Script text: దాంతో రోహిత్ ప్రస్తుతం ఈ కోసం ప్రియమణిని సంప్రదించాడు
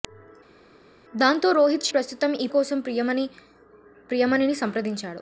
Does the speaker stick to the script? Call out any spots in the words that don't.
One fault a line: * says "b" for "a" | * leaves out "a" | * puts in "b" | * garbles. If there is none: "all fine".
all fine